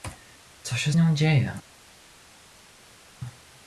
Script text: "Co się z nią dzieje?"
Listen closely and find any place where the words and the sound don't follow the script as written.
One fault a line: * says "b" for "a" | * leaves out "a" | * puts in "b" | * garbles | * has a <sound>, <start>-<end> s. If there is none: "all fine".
all fine